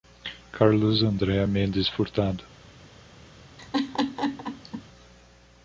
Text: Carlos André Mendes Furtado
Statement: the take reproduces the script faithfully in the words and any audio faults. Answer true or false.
false